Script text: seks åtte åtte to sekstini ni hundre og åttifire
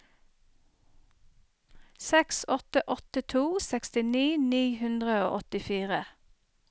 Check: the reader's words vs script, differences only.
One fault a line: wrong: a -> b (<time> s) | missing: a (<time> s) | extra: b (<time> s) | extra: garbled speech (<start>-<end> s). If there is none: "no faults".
no faults